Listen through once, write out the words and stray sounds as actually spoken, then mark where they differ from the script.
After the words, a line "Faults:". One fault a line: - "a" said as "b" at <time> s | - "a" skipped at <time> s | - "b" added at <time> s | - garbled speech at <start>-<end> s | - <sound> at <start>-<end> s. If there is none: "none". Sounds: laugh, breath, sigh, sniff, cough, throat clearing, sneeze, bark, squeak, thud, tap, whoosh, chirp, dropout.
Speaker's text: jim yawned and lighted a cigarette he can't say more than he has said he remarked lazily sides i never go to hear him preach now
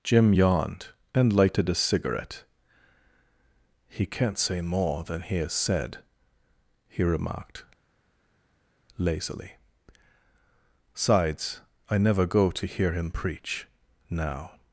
jim yawned and lighted a cigarette he can't say more than he has said he remarked lazily sides i never go to hear him preach now
Faults:
none